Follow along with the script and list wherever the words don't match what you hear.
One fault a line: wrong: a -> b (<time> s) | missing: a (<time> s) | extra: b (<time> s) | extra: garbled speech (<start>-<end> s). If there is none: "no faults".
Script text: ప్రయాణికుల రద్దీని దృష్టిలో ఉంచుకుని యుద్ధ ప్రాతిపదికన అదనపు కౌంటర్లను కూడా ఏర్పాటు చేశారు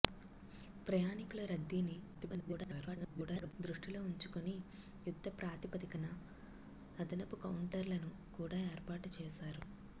extra: garbled speech (2.1-3.5 s)